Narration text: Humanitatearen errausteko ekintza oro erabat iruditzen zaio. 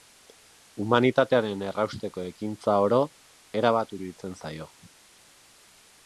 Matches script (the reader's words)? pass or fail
pass